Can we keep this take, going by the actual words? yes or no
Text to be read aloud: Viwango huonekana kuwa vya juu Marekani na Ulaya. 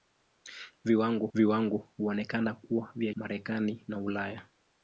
no